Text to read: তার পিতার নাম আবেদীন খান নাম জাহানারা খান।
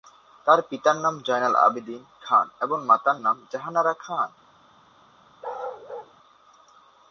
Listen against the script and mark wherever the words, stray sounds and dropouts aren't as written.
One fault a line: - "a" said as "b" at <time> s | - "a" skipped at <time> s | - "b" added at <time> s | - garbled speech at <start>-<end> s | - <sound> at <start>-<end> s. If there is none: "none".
- "জয়নাল" added at 1.2 s
- "এবং মাতার" added at 2.6 s
- bark at 5.4-6.1 s